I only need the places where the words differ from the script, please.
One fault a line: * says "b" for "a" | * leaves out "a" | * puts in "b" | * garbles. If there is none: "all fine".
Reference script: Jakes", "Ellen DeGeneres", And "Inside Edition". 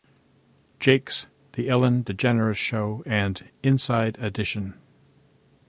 * puts in "The"
* puts in "Show"